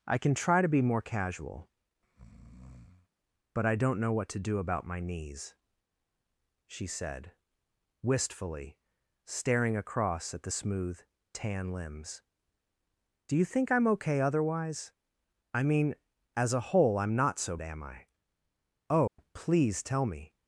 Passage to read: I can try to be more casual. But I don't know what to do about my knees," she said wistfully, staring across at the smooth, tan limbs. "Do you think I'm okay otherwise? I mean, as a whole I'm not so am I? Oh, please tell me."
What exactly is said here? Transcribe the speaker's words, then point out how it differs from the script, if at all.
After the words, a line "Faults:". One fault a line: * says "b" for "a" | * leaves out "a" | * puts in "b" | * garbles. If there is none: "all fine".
I can try to be more casual. But I don't know what to do about my knees," she said wistfully, staring across at the smooth, tan limbs. "Do you think I'm okay otherwise? I mean, as a whole I'm not so am I? Oh, please tell me."
Faults:
all fine